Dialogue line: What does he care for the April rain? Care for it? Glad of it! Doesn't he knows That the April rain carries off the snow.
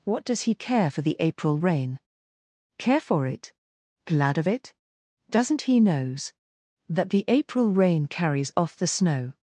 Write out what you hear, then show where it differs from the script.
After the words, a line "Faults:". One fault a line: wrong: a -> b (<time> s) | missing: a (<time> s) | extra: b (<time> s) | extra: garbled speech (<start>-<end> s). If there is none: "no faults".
What does he care for the April rain? Care for it? Glad of it! Doesn't he knows That the April rain carries off the snow.
Faults:
no faults